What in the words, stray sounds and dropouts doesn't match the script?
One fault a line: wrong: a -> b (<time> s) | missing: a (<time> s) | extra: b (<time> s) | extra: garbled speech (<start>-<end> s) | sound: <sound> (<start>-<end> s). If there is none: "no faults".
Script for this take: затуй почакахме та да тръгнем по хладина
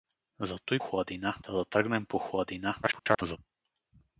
wrong: почакахме -> хладина (0.8 s)
extra: garbled speech (2.8-3.4 s)